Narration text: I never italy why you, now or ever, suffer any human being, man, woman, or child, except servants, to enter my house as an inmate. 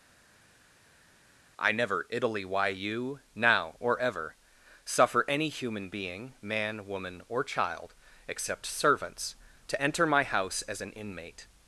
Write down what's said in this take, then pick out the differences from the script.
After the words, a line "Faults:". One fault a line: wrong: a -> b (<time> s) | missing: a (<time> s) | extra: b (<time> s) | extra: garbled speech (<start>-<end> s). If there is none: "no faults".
I never italy why you, now or ever, suffer any human being, man, woman, or child, except servants, to enter my house as an inmate.
Faults:
no faults